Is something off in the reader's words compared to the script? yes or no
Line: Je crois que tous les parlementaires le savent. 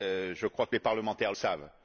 yes